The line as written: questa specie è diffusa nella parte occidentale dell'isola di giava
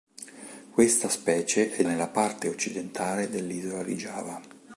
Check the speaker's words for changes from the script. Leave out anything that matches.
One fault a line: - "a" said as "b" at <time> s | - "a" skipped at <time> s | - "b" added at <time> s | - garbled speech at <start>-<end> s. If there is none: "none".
- "diffusa" skipped at 1.8 s